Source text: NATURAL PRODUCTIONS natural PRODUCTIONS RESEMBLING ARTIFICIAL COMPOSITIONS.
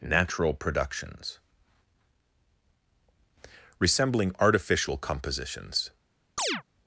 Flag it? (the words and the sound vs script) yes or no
yes